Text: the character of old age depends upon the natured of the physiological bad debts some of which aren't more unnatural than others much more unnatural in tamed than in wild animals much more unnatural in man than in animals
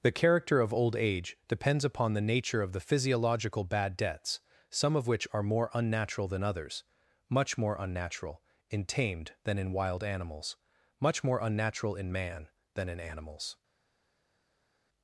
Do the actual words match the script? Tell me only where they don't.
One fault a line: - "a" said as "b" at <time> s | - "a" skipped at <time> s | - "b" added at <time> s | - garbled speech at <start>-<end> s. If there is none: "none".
- "natured" said as "nature" at 2.2 s
- "aren't" said as "are" at 5.3 s